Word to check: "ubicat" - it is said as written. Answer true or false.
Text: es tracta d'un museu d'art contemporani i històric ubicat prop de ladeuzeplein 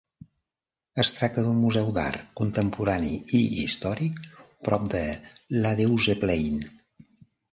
false